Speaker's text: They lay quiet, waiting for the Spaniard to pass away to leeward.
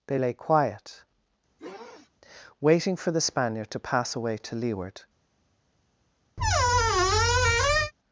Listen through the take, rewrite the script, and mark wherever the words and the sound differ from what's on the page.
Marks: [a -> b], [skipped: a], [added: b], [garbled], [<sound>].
They lay quiet, [sniff] waiting for the Spaniard to pass away to leeward. [squeak]